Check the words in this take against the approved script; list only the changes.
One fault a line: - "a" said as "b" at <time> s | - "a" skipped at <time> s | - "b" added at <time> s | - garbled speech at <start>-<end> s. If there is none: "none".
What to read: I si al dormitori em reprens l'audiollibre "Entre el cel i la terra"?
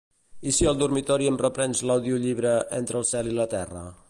none